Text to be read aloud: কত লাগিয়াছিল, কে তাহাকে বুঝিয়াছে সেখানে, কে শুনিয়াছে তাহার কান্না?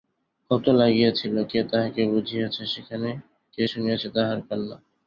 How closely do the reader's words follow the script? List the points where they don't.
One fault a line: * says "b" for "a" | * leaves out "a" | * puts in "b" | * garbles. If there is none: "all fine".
all fine